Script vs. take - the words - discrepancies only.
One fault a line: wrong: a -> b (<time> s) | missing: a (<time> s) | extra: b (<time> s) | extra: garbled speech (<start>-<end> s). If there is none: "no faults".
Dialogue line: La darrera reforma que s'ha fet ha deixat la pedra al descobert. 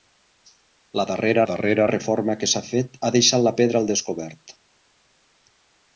extra: darrera (1.5 s)